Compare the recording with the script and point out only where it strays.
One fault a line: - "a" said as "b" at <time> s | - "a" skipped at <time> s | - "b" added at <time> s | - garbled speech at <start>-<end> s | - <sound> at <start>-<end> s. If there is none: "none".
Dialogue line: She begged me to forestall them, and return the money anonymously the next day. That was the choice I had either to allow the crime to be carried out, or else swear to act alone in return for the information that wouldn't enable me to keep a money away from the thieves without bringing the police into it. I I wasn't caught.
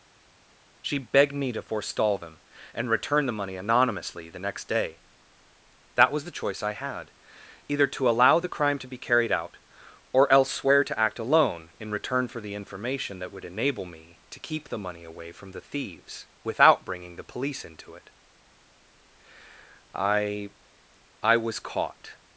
- "wouldn't" said as "would" at 13.3 s
- "a" said as "the" at 14.7 s
- "wasn't" said as "was" at 21.4 s